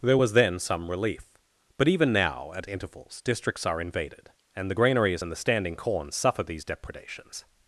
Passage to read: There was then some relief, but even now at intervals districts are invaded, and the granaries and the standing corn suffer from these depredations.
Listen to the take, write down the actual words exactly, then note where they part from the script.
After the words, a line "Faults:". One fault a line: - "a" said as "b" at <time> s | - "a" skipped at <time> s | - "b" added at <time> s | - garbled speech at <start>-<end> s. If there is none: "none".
There was then some relief, but even now at intervals districts are invaded, and the granaries and the standing corn suffer these depredations.
Faults:
- "from" skipped at 6.4 s